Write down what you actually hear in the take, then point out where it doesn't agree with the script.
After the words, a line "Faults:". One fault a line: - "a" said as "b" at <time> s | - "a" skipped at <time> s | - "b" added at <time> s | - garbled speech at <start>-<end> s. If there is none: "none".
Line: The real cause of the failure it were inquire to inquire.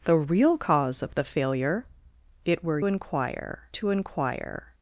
The real cause of the failure it were inquire to inquire.
Faults:
none